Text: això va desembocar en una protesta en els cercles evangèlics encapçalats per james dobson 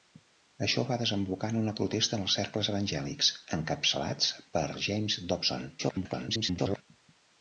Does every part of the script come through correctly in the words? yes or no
no